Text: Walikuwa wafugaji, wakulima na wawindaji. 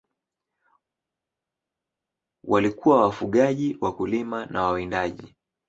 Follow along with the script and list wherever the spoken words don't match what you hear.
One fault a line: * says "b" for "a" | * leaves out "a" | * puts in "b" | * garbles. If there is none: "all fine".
all fine